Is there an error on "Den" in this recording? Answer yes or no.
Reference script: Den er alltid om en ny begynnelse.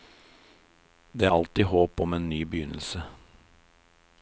yes